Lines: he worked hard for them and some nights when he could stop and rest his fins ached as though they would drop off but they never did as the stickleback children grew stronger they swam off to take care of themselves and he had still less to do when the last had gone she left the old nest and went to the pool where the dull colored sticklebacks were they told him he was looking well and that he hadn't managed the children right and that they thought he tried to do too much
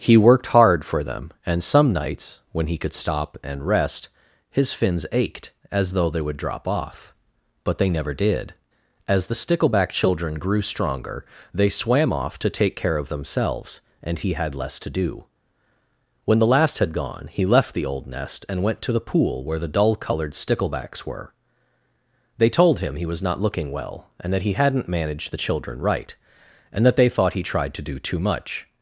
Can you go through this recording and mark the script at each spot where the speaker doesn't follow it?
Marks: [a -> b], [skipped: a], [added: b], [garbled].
he worked hard for them and some nights when he could stop and rest his fins ached as though they would drop off but they never did as the stickleback children grew stronger they swam off to take care of themselves and he had [skipped: still] less to do when the last had gone [she -> he] left the old nest and went to the pool where the dull colored sticklebacks were they told him he was [added: not] looking well and that he hadn't managed the children right and that they thought he tried to do too much